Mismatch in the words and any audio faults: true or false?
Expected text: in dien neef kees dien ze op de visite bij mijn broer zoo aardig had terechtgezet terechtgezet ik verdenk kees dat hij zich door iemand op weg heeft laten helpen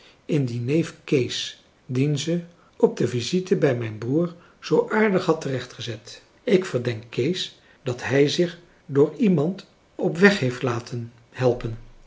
true